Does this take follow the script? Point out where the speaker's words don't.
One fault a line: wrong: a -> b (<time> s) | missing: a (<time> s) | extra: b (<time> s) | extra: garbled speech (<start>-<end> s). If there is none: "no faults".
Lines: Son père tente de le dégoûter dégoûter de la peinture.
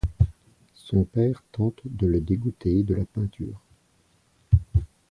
missing: dégoûter (2.8 s)